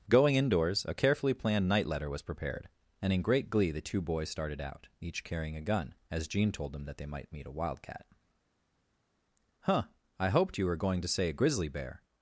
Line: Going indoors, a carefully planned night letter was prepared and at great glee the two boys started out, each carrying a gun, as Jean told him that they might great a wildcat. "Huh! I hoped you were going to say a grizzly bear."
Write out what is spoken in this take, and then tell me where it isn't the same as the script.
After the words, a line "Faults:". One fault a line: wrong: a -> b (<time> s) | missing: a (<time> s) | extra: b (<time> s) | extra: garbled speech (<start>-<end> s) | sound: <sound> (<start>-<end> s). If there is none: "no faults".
Going indoors, a carefully planned night letter was prepared and in great glee the two boys started out, each carrying a gun, as Jean told them that they might meet a wildcat. "Huh! I hoped you were going to say a grizzly bear."
Faults:
wrong: at -> in (3.1 s)
wrong: him -> them (6.7 s)
wrong: great -> meet (7.3 s)